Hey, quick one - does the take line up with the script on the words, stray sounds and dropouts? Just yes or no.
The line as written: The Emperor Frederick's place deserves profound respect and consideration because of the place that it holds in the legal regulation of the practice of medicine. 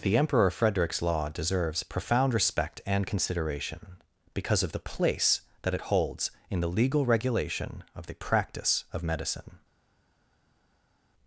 no